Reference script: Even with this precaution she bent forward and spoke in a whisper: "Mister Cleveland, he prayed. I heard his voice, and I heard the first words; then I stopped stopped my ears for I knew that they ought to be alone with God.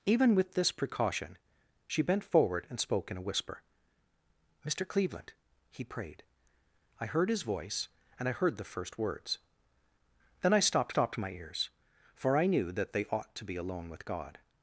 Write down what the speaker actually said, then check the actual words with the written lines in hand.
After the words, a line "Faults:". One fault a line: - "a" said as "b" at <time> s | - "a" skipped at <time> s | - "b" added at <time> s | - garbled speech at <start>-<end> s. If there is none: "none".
Even with this precaution she bent forward and spoke in a whisper: "Mister Cleveland, he prayed. I heard his voice, and I heard the first words; then I stopped stopped my ears for I knew that they ought to be alone with God.
Faults:
none